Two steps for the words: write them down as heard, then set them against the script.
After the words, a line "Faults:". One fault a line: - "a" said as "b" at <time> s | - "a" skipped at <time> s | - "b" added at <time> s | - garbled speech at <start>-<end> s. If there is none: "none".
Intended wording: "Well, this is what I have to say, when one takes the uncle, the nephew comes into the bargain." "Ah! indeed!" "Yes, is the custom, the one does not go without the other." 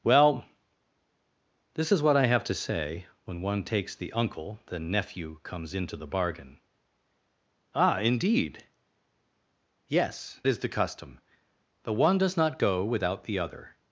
"Well, this is what I have to say, when one takes the uncle, the nephew comes into the bargain." "Ah! indeed!" "Yes, is the custom, the one does not go without the other."
Faults:
none